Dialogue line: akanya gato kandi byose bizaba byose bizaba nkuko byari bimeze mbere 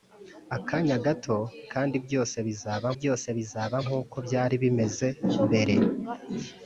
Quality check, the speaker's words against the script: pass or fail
pass